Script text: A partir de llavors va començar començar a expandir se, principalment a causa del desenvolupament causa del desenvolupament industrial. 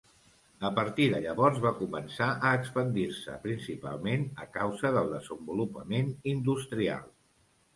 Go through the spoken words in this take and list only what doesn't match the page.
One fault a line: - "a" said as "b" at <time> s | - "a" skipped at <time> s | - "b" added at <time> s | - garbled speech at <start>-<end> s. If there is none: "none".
- "començar" skipped at 2.3 s
- "causa del desenvolupament" skipped at 6.1 s